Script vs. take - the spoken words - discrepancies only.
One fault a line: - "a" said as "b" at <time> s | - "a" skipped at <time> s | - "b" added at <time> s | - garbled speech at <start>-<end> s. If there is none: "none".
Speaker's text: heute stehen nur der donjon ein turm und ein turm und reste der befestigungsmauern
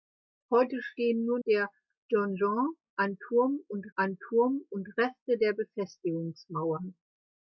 none